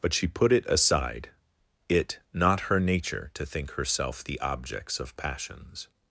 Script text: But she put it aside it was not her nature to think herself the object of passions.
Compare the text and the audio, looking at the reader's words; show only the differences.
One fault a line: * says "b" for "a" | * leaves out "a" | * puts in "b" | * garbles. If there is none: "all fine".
* leaves out "was"
* says "objects" for "object"